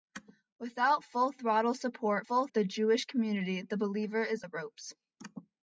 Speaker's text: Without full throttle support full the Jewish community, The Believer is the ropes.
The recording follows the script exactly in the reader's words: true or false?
true